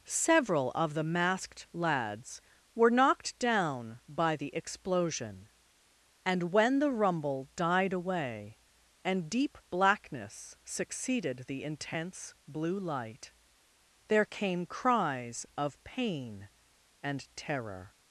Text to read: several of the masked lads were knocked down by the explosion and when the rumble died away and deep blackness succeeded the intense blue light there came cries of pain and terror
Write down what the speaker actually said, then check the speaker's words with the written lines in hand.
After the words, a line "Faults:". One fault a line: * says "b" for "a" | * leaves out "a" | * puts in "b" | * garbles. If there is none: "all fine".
several of the masked lads were knocked down by the explosion and when the rumble died away and deep blackness succeeded the intense blue light there came cries of pain and terror
Faults:
all fine